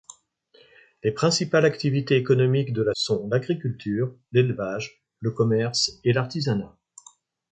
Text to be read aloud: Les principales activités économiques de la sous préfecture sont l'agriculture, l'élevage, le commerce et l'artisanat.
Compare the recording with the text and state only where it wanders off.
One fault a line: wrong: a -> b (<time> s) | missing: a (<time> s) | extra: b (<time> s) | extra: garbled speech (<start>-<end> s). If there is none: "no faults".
missing: sous préfecture (3.0 s)